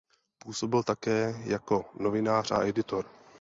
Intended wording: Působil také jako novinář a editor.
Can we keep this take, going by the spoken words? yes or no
yes